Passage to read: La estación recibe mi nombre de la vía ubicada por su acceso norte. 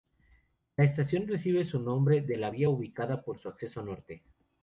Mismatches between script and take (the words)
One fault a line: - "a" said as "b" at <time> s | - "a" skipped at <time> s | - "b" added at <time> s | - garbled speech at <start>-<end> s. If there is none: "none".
- "mi" said as "su" at 1.6 s